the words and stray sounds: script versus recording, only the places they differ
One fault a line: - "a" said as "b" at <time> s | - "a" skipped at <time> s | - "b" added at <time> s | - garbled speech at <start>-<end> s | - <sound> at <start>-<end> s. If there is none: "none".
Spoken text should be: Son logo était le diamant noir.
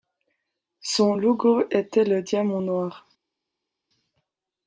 none